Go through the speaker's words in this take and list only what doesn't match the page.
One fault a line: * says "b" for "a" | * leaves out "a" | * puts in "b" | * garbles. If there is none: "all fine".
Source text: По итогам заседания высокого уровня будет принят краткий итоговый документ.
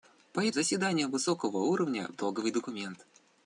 * leaves out "итогам"
* leaves out "будет принят краткий"